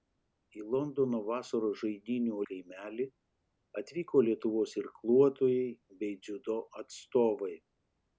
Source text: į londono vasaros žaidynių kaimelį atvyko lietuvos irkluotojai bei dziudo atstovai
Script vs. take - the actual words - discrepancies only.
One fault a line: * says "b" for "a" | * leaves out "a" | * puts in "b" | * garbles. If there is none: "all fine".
all fine